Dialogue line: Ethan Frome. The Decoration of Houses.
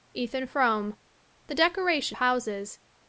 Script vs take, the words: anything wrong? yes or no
yes